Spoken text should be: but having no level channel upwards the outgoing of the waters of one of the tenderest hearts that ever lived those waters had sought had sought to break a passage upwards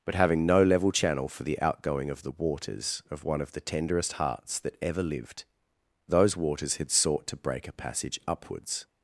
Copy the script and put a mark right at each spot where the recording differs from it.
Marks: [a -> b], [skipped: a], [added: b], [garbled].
but having no level channel [upwards -> for] the outgoing of the waters of one of the tenderest hearts that ever lived those waters had sought [skipped: had sought] to break a passage upwards